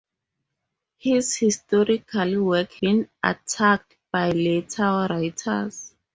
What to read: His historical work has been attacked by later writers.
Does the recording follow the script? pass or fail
fail